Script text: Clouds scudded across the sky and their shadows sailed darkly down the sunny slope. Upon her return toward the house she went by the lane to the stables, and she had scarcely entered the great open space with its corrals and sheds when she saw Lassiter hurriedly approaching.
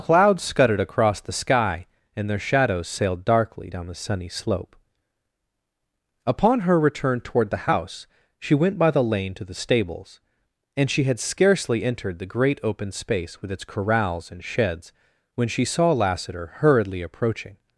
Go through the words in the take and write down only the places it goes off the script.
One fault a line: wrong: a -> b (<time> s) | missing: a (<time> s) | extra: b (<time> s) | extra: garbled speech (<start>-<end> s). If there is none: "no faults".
no faults